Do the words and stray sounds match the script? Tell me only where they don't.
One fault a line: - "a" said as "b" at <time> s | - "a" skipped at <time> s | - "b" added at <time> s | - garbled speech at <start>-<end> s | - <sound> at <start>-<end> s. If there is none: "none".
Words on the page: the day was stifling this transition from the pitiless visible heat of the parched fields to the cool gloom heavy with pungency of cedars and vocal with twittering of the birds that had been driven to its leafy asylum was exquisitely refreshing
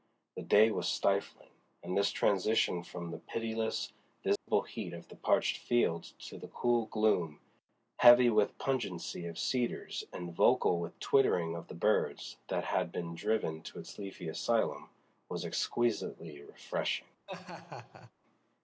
- "and" added at 1.8 s
- dropout at 4.4-4.5 s
- laugh at 17.3-18.1 s